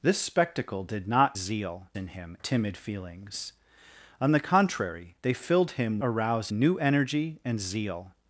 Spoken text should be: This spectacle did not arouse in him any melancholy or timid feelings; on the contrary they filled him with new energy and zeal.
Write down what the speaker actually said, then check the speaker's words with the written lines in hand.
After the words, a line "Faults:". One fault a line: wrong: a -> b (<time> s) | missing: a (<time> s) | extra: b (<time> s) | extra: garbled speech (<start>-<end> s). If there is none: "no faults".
This spectacle did not zeal in him timid feelings; on the contrary they filled him arouse new energy and zeal.
Faults:
wrong: arouse -> zeal (1.3 s)
missing: any melancholy or (2.4 s)
wrong: with -> arouse (6.0 s)